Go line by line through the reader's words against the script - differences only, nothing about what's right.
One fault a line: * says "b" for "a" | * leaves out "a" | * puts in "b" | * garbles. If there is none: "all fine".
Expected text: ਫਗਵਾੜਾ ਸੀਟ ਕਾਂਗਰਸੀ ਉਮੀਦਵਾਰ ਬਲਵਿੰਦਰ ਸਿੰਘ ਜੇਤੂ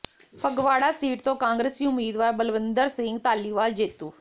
* puts in "ਤੋਂ"
* puts in "ਧਾਲੀਵਾਲ"